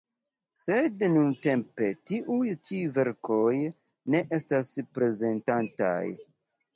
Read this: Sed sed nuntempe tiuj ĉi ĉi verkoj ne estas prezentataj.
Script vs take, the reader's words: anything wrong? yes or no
yes